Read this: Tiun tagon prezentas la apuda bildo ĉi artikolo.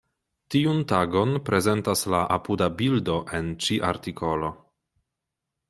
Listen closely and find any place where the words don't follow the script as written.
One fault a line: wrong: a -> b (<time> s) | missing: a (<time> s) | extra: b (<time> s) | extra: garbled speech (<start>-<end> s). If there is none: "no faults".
extra: en (3.4 s)